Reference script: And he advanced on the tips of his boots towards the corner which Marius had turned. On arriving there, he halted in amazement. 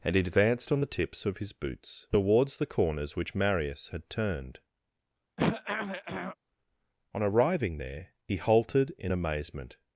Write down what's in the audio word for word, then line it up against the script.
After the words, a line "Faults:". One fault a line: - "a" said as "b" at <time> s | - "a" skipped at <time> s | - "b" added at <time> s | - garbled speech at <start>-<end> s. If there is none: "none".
And he advanced on the tips of his boots towards the corners which Marius had turned. On arriving there, he halted in amazement.
Faults:
- "corner" said as "corners" at 2.7 s